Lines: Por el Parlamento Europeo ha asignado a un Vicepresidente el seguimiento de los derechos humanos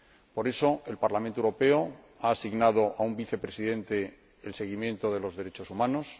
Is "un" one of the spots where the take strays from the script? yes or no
no